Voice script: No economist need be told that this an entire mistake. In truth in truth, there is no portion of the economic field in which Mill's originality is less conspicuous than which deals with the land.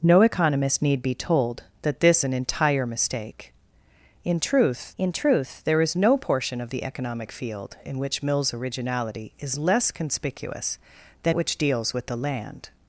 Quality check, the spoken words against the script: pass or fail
pass